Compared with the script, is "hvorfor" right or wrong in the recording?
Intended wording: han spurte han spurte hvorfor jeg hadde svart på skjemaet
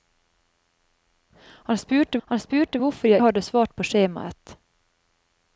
right